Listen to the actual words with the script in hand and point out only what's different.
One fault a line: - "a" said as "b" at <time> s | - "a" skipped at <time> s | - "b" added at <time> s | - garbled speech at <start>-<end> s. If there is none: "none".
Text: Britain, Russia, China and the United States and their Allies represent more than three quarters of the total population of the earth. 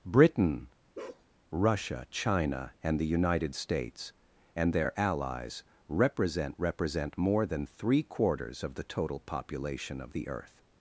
- "represent" added at 6.6 s